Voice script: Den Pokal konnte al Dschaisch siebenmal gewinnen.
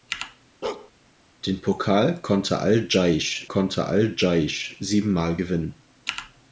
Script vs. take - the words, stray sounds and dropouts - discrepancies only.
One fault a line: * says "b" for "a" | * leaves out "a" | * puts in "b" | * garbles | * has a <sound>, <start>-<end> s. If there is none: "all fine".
* has a bark, 0.6-0.9 s
* puts in "konnte al Dschaisch"